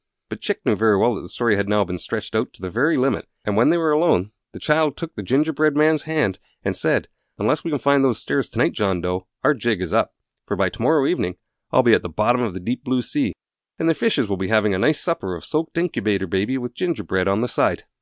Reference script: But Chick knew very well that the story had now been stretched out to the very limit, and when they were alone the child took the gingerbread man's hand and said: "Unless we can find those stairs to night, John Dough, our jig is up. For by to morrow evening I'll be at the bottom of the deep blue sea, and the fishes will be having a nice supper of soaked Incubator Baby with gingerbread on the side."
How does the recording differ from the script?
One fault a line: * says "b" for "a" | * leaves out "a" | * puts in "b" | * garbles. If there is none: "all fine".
all fine